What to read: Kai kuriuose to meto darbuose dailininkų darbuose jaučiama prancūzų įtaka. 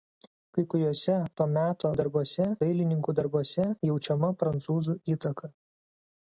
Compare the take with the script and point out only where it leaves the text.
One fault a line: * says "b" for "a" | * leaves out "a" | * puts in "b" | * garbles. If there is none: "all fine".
all fine